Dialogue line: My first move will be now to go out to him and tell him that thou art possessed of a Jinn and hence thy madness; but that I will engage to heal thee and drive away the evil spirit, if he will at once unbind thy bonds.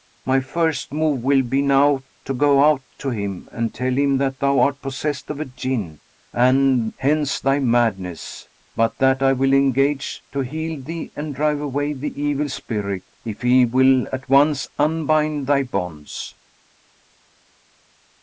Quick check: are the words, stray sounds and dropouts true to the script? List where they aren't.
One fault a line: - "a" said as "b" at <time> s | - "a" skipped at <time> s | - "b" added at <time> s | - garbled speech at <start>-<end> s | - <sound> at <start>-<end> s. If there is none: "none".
none